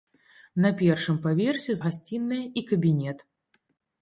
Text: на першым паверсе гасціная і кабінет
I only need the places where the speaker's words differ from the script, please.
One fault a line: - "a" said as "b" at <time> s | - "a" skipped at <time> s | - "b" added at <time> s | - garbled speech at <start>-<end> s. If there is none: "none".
none